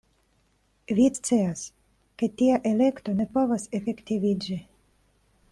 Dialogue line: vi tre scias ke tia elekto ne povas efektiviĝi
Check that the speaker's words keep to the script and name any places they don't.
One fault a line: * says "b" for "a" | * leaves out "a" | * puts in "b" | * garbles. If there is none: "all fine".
* leaves out "tre"